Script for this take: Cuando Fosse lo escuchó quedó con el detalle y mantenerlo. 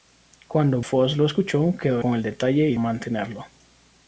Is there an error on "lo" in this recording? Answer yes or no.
no